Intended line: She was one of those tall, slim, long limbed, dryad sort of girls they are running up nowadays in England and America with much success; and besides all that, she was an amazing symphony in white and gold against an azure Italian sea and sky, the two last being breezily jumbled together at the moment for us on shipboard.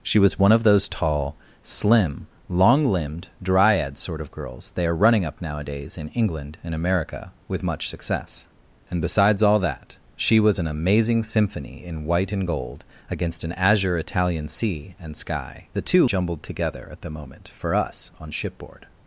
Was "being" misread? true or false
true